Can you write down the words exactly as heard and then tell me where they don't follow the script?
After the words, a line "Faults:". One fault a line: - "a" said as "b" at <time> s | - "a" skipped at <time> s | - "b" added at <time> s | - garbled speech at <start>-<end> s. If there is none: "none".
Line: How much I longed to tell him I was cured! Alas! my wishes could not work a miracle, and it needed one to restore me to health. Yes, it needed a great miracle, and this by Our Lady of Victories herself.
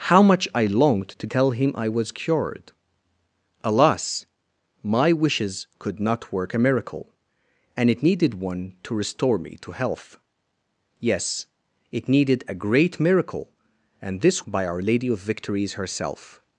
How much I longed to tell him I was cured! Alas! my wishes could not work a miracle, and it needed one to restore me to health. Yes, it needed a great miracle, and this by Our Lady of Victories herself.
Faults:
none